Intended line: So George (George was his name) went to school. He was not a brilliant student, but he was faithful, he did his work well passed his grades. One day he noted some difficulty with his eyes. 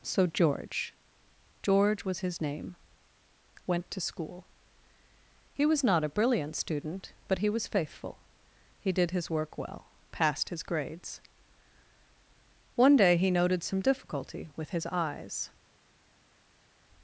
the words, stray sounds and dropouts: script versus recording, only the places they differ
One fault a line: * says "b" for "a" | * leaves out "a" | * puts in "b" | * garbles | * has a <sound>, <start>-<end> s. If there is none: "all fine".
all fine